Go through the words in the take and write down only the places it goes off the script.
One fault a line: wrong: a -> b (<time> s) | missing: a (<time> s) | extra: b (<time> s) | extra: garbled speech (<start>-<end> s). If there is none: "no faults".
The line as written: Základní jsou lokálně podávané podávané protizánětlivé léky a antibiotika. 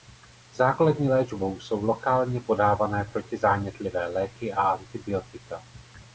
extra: léčbou (1.1 s)
missing: podávané (3.0 s)